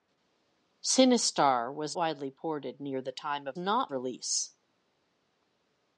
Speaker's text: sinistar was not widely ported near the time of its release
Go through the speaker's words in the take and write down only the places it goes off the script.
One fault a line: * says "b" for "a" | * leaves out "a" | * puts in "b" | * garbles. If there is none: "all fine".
* leaves out "not"
* says "not" for "its"